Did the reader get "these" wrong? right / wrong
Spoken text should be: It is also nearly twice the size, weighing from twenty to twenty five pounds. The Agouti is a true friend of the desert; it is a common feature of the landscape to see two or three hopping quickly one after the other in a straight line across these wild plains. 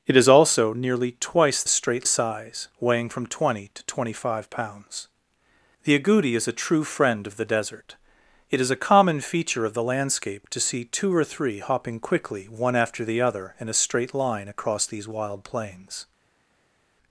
right